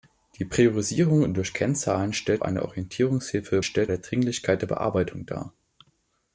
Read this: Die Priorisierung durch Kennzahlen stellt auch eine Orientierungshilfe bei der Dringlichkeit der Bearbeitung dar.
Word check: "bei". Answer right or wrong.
wrong